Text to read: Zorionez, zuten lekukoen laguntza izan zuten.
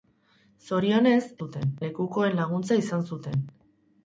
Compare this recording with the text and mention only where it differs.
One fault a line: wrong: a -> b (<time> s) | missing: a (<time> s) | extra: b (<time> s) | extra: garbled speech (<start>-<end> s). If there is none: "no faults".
no faults